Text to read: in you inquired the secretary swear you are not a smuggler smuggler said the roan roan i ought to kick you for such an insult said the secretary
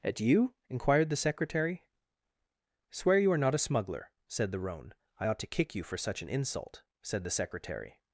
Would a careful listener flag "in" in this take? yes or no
yes